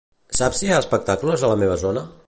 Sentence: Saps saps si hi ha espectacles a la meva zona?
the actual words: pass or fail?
fail